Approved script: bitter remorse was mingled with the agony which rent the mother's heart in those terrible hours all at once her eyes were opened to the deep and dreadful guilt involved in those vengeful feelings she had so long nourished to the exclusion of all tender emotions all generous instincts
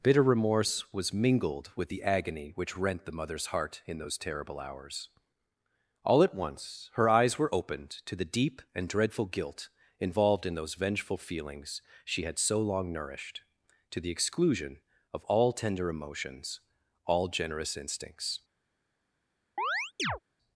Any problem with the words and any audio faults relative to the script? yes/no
yes